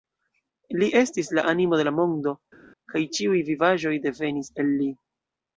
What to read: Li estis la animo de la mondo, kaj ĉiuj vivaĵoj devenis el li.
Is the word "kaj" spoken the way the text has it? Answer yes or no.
yes